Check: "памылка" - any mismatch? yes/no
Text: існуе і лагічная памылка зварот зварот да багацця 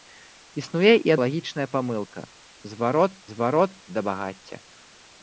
no